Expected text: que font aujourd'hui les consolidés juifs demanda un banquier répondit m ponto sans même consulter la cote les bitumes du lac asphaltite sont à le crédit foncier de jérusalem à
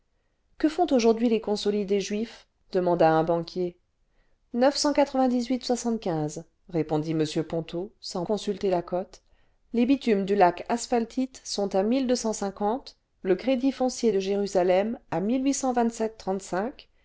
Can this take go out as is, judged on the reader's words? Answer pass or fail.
fail